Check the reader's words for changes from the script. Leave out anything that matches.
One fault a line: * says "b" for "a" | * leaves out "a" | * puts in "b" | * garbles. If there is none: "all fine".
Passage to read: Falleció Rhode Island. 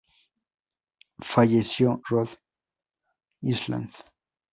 all fine